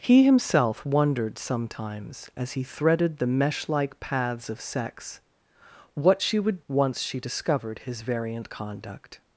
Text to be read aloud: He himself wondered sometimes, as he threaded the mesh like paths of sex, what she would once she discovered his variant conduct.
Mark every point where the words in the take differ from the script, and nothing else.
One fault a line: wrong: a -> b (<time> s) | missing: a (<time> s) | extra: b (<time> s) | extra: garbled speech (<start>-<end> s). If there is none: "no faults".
no faults